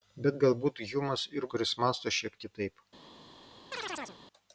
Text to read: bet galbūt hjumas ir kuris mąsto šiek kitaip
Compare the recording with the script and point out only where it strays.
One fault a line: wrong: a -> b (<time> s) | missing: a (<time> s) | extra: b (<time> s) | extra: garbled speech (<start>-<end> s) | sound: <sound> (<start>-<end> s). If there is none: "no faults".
sound: chirp (3.7-4.2 s)